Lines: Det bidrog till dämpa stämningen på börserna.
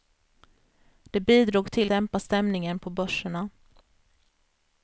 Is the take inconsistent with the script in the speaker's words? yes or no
no